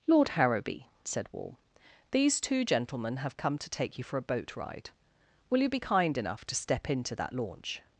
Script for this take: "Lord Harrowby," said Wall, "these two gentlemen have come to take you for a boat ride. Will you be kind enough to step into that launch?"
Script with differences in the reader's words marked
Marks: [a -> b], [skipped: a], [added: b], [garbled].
"Lord Harrowby," said Wall, "these two gentlemen have come to take you for a boat ride. Will you be kind enough to step into that launch?"